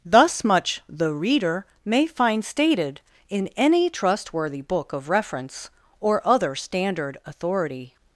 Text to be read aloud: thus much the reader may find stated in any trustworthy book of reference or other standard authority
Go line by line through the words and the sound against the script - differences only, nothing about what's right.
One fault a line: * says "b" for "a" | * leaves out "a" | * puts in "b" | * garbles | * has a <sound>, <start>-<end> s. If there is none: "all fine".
all fine